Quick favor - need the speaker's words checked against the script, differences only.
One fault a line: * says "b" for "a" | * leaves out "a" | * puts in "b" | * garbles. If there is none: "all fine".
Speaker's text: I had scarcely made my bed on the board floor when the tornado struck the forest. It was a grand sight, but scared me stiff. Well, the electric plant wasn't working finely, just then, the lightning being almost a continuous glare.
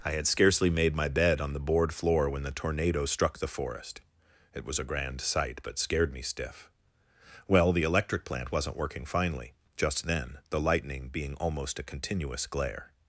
all fine